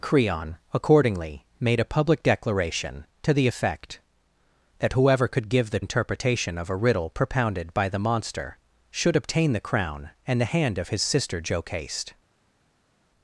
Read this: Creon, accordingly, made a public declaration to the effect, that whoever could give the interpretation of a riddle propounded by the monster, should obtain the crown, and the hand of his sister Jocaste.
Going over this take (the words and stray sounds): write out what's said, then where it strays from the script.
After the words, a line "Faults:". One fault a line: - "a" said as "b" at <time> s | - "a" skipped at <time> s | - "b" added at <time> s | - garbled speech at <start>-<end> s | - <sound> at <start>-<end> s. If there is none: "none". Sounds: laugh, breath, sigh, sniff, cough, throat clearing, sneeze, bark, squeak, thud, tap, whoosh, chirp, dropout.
Creon, accordingly, made a public declaration to the effect, that whoever could give the interpretation of a riddle propounded by the monster, should obtain the crown, and the hand of his sister Jocaste.
Faults:
none